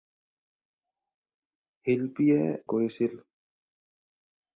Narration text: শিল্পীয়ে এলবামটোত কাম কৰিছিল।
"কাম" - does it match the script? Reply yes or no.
no